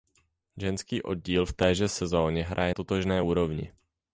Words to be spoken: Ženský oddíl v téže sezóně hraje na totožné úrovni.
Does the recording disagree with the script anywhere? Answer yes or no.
yes